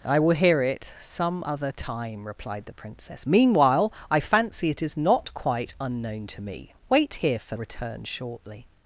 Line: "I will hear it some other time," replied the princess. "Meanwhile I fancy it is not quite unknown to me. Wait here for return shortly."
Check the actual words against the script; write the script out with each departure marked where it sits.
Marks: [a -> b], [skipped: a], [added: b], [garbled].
"I will hear it some other time," replied the princess. "Meanwhile I fancy it is not quite unknown to me. Wait here for return shortly."